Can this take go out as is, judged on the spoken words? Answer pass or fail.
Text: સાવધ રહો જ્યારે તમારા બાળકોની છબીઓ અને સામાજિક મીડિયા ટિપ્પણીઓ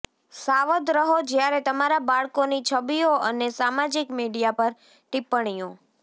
fail